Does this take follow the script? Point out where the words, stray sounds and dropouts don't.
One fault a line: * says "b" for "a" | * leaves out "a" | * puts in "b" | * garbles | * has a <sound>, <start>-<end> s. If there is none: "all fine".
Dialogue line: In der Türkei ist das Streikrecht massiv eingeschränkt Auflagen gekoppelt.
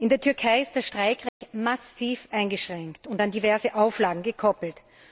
* has a dropout, 1.3-1.4 s
* puts in "und an diverse"